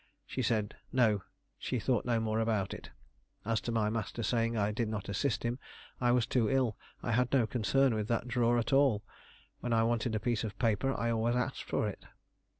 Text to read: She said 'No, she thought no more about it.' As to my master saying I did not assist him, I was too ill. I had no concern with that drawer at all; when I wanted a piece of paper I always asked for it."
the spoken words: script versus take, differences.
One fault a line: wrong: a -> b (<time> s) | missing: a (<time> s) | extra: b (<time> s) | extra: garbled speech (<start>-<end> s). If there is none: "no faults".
no faults